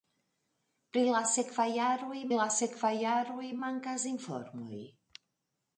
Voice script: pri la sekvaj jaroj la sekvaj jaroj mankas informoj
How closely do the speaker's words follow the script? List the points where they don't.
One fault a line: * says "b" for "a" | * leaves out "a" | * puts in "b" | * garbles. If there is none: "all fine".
all fine